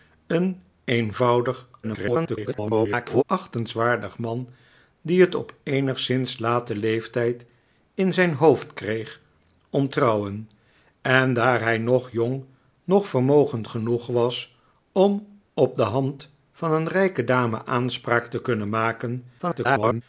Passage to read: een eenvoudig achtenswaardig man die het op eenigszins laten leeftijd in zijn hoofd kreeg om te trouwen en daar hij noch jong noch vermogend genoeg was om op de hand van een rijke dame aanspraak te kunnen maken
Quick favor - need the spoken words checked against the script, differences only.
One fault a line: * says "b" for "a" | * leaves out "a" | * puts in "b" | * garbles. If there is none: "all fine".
* garbles
* leaves out "te"
* garbles